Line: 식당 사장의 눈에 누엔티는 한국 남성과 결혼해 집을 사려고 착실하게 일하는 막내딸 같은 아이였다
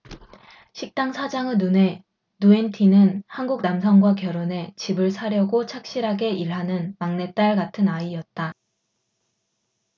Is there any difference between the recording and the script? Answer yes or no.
no